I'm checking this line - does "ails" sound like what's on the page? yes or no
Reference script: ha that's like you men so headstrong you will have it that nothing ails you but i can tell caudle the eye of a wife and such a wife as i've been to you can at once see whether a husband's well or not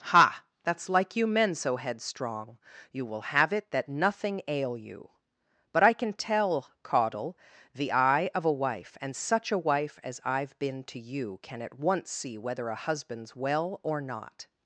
no